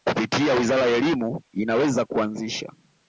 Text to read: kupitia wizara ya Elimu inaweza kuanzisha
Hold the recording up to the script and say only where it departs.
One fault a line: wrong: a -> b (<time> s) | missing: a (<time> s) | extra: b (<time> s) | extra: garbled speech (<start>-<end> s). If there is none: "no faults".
no faults